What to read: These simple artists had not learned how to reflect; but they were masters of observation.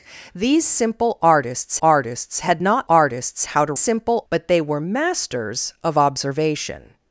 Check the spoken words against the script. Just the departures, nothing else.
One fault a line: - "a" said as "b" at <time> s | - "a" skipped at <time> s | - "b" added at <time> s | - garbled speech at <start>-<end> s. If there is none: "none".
- "artists" added at 1.8 s
- "learned" said as "artists" at 2.9 s
- "reflect" said as "simple" at 3.7 s